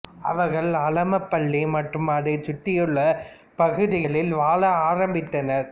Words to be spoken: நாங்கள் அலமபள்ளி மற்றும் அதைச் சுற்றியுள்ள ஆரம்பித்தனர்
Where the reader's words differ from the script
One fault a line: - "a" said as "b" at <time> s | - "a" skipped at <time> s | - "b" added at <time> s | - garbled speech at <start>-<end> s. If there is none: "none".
- "நாங்கள்" said as "அவர்கள்" at 0.3 s
- "பகுதிகளில் வாழ" added at 3.6 s